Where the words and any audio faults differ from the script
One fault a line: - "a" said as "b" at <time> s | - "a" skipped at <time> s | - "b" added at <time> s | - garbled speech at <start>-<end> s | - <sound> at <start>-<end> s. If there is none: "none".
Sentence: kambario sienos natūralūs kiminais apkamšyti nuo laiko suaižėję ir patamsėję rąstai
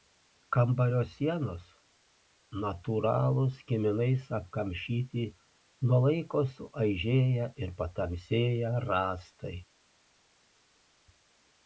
none